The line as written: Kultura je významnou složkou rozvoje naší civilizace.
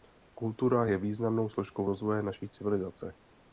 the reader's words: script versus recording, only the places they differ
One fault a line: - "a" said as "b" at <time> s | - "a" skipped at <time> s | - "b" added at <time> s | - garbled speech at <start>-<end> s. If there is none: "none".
none